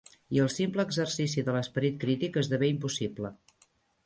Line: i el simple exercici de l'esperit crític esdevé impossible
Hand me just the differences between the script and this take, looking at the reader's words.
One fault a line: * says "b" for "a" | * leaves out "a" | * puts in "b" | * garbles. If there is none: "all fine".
all fine